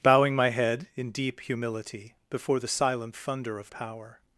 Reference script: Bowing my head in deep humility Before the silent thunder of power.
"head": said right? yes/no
yes